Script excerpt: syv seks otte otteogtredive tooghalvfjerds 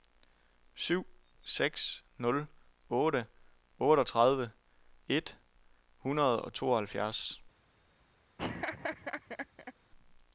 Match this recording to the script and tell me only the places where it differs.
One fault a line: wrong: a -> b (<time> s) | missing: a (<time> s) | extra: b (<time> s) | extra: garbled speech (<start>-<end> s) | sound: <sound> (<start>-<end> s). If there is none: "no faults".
extra: nul (2.2 s)
extra: et hundrede og (5.1 s)
sound: laugh (8.4-9.7 s)